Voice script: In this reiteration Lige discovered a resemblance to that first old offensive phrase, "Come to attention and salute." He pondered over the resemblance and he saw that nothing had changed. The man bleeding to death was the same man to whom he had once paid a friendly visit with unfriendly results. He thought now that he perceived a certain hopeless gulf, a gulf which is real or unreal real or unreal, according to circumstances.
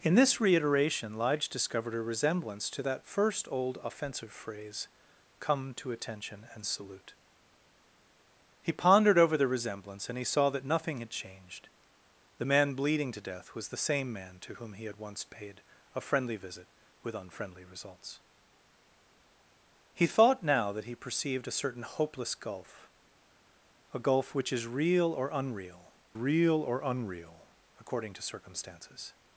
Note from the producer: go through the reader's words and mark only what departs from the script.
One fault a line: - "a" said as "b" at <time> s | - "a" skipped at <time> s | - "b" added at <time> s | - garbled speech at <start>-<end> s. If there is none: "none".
none